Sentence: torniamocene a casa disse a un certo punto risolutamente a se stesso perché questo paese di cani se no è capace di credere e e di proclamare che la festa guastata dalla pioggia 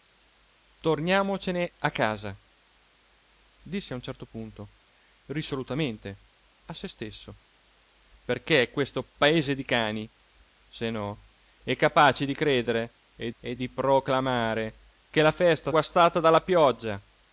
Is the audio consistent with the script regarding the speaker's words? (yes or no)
yes